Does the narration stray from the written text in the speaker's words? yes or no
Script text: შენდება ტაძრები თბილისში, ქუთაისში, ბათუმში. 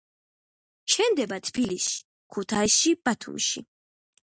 yes